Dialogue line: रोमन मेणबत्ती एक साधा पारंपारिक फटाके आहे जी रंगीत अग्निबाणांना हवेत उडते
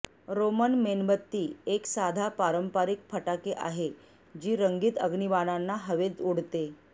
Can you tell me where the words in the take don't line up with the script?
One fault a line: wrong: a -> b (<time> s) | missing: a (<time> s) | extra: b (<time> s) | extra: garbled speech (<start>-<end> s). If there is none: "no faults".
no faults